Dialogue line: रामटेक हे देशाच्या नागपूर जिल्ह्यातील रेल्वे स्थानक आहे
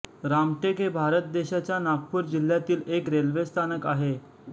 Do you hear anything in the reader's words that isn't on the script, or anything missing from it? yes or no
yes